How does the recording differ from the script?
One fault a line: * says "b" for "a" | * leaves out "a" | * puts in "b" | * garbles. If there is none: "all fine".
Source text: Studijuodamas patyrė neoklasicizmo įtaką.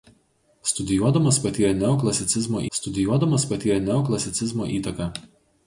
* puts in "studijuodamas patyrė neoklasicizmo"